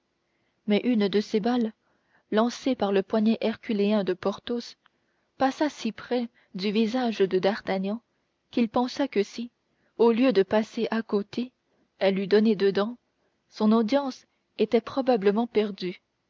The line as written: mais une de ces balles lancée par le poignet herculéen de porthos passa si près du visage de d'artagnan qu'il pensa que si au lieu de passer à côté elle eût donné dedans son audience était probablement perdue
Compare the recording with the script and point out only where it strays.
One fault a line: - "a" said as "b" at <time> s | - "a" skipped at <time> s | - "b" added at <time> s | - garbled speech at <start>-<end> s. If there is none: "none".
none